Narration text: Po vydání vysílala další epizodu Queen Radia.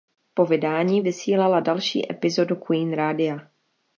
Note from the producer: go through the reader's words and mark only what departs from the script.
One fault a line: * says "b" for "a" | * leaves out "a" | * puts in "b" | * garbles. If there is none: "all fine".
all fine